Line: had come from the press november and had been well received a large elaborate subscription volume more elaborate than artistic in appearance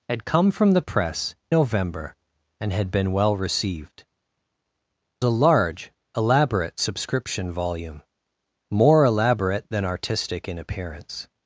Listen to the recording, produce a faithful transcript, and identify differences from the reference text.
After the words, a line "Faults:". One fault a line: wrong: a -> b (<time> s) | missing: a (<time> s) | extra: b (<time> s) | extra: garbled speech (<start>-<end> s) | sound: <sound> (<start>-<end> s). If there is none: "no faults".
had come from the press november and had been well received a large elaborate subscription volume more elaborate than artistic in appearance
Faults:
no faults